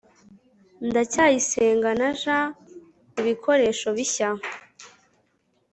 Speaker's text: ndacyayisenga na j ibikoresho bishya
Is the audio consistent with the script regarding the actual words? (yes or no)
yes